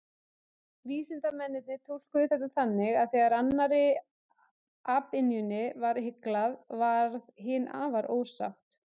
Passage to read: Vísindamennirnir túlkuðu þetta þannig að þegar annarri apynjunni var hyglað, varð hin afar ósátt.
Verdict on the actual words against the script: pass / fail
pass